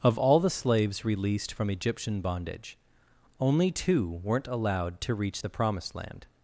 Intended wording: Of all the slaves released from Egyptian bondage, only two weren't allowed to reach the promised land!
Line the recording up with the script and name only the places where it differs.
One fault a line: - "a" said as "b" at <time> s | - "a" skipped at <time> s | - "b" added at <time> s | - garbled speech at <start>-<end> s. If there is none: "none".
none